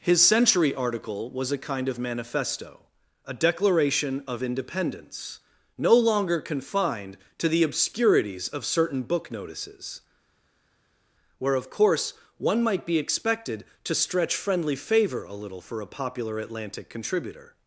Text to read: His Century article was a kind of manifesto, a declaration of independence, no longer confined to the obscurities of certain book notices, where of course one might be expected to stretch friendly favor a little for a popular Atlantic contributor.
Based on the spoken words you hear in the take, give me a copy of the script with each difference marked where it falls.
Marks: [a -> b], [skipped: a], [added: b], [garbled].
His Century article was a kind of manifesto, a declaration of independence, no longer confined to the obscurities of certain book notices, where of course one might be expected to stretch friendly favor a little for a popular Atlantic contributor.